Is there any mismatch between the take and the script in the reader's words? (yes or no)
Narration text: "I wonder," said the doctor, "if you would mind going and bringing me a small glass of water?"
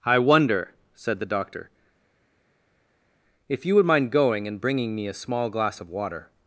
no